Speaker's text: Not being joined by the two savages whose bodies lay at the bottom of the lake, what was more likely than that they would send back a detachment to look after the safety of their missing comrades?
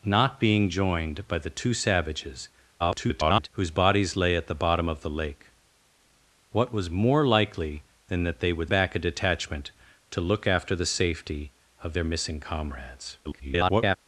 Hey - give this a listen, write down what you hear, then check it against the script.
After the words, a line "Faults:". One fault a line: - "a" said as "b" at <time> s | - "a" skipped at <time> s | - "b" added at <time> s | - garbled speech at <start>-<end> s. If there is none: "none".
Not being joined by the two savages [garbled] whose bodies lay at the bottom of the lake, what was more likely than that they would back a detachment to look after the safety of their missing comrades? [garbled]
Faults:
- garbled speech at 2.8-3.5 s
- "send" skipped at 8.7 s
- garbled speech at 13.2-14.0 s